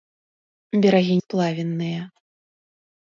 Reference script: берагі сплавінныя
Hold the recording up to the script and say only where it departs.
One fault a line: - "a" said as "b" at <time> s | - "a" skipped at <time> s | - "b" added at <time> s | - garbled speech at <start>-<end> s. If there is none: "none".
none